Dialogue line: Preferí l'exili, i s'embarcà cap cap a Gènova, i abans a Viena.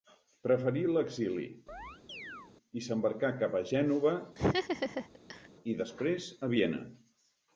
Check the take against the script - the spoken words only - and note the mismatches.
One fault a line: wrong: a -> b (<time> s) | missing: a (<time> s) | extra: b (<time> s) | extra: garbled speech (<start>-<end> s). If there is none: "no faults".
missing: cap (3.6 s)
wrong: abans -> després (5.8 s)